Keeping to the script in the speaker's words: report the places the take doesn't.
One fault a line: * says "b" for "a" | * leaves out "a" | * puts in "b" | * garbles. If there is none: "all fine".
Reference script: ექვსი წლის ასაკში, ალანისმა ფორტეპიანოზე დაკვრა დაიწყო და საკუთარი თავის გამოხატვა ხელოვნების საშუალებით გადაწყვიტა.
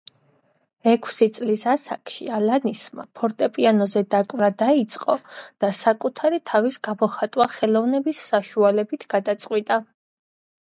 all fine